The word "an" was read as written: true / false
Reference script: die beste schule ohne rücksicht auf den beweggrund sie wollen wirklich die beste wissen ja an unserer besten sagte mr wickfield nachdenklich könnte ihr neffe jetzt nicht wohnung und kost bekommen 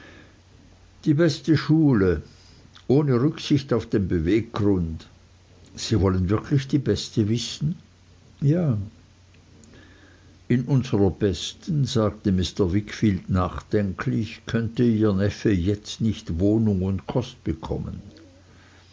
false